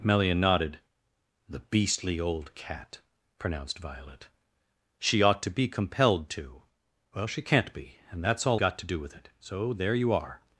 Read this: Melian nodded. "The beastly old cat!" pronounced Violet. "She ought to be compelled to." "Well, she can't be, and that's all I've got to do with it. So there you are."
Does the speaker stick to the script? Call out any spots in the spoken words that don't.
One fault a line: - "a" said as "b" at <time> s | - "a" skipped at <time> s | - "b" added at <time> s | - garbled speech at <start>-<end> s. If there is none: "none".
- "I've" skipped at 8.6 s